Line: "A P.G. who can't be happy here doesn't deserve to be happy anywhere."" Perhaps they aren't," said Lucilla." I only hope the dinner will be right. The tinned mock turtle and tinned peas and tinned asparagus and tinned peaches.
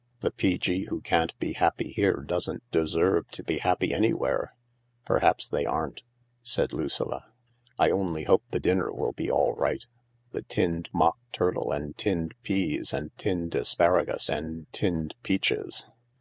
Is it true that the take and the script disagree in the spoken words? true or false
true